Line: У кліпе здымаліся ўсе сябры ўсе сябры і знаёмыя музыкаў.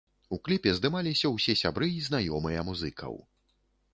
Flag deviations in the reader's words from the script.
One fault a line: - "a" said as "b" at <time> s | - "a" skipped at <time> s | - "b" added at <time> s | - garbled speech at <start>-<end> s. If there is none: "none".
- "ўсе сябры" skipped at 1.9 s